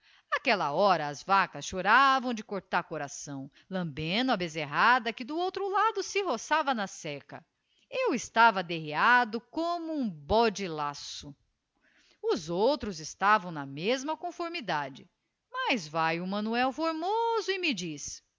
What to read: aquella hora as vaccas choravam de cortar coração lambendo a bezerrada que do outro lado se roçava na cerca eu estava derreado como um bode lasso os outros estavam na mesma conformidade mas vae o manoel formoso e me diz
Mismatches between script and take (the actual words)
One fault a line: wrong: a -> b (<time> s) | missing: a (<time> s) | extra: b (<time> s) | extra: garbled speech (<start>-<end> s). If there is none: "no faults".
no faults